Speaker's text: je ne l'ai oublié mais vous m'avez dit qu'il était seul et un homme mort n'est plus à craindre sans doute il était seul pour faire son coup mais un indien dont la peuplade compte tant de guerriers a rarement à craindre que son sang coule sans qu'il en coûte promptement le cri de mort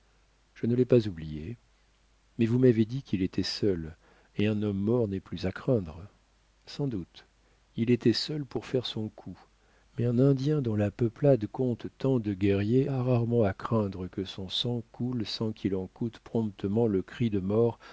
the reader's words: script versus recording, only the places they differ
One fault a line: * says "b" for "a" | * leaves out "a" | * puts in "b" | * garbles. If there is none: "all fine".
* puts in "pas"